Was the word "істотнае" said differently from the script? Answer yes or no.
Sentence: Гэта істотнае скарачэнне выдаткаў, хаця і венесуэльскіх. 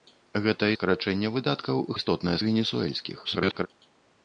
yes